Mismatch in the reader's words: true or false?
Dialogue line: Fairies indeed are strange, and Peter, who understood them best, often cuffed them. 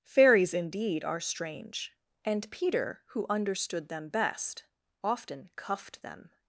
false